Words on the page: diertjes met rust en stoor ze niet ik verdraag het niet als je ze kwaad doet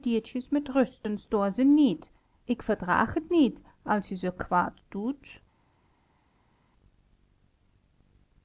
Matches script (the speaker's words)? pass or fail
pass